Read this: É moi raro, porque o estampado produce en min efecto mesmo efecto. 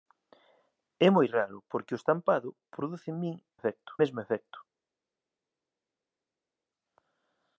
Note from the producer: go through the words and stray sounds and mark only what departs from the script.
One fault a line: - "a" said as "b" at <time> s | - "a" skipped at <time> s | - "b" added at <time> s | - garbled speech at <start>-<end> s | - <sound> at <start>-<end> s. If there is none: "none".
none